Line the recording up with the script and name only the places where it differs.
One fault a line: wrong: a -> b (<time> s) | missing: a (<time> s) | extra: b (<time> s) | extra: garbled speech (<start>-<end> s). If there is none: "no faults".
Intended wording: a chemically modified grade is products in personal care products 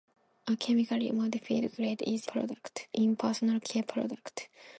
no faults